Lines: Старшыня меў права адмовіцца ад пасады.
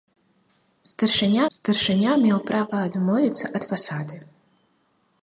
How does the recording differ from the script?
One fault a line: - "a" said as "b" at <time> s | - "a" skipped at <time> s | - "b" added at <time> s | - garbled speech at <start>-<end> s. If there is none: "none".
- "старшыня" added at 1.6 s